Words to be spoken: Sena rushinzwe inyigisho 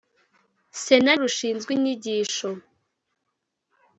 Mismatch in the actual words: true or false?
false